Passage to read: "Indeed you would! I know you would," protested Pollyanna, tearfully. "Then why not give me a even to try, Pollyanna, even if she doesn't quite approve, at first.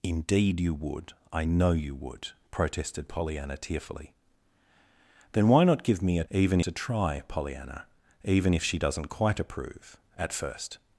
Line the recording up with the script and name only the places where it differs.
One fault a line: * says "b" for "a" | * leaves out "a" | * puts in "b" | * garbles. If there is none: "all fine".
all fine